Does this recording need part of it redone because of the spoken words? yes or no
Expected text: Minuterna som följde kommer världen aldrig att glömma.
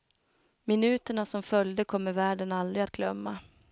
no